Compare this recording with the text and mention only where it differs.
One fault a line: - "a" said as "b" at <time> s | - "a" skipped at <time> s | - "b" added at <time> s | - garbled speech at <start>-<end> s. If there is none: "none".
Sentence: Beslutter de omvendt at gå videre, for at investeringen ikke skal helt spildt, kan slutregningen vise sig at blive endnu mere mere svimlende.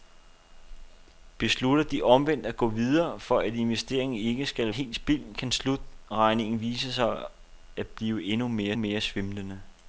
none